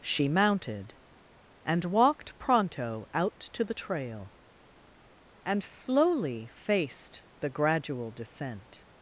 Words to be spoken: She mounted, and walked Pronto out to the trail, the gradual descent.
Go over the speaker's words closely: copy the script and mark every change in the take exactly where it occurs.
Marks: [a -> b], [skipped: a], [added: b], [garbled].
She mounted, and walked Pronto out to the trail, [added: and slowly faced] the gradual descent.